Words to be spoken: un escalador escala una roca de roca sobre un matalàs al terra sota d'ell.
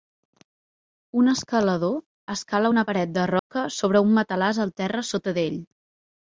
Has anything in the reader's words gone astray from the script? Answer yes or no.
yes